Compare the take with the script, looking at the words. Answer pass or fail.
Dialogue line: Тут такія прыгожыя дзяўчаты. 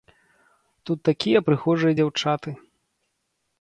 pass